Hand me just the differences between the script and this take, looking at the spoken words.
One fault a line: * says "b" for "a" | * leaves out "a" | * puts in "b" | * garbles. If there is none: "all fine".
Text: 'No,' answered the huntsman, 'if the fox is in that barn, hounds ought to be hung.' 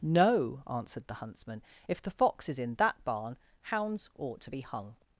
all fine